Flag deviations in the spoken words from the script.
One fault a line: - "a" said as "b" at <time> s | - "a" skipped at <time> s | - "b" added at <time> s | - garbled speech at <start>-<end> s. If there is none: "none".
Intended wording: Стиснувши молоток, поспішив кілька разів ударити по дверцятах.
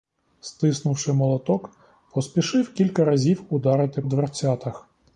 - "по" skipped at 4.0 s